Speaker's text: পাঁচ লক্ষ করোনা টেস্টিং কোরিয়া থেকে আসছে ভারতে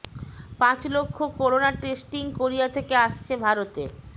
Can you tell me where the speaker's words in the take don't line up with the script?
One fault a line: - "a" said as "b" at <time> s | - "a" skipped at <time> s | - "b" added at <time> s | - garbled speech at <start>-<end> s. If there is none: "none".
none